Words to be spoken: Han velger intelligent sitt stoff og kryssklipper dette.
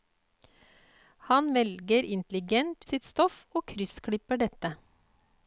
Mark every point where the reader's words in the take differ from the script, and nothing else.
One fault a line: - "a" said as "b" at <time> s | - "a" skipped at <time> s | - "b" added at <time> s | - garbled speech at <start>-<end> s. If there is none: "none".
none